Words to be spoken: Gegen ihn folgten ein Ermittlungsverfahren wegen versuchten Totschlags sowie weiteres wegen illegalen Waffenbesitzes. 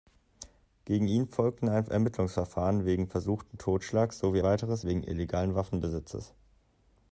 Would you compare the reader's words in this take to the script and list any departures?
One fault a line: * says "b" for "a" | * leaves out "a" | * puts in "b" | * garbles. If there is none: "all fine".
all fine